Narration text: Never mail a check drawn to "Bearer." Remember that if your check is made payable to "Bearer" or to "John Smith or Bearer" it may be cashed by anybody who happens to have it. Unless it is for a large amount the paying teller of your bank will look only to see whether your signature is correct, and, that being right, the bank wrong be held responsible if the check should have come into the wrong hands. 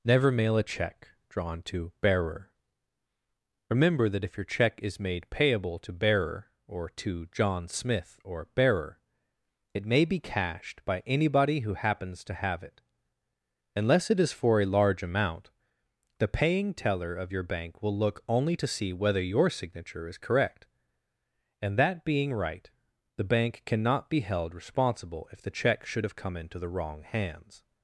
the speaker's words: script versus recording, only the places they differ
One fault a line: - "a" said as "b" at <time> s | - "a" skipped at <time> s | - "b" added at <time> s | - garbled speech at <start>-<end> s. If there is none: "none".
- "wrong" said as "cannot" at 23.6 s